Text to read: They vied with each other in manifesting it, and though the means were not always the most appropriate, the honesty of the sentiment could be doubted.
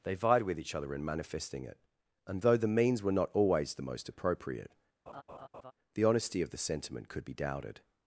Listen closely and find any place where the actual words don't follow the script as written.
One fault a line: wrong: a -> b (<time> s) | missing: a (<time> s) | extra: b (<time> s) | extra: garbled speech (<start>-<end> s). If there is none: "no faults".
no faults